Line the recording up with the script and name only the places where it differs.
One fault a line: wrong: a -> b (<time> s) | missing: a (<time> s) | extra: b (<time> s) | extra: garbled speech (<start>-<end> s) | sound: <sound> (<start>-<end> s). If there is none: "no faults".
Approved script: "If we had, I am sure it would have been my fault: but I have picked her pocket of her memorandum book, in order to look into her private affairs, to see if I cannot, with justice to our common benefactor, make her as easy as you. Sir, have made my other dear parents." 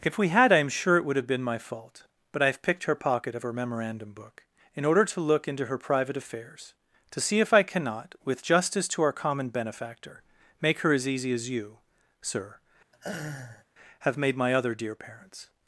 sound: laugh (12.9-13.6 s)